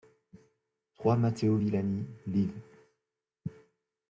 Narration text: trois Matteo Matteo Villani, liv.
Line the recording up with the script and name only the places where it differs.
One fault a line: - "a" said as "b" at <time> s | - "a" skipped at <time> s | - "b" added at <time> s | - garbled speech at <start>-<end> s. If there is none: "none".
- "Matteo" skipped at 1.6 s